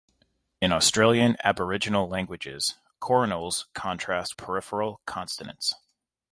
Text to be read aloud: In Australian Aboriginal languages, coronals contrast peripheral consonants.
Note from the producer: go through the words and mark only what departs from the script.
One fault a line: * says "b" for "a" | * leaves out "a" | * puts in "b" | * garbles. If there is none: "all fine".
all fine